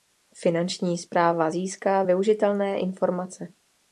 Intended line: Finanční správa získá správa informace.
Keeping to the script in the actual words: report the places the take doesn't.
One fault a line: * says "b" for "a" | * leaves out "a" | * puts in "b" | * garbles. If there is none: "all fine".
* says "využitelné" for "správa"